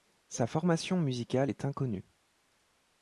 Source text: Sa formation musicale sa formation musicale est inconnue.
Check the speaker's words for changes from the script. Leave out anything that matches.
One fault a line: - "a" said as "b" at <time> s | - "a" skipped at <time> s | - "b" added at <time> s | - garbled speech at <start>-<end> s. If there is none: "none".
- "sa formation musicale" skipped at 1.5 s